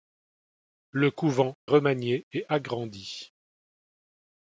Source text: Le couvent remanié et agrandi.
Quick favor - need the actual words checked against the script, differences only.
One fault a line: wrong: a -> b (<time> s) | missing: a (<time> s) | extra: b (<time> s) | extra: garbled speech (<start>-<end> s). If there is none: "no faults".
no faults